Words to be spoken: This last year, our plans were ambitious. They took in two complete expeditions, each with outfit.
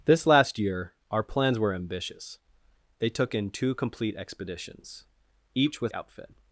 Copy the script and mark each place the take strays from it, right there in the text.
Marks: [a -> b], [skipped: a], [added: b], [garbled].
This last year, our plans were ambitious. They took in two complete expeditions, each with outfit.